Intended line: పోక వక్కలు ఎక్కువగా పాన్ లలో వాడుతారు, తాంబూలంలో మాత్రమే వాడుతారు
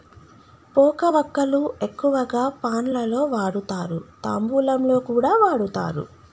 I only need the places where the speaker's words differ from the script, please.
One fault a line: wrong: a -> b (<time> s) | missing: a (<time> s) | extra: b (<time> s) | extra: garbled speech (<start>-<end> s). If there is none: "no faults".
wrong: మాత్రమే -> కూడా (5.1 s)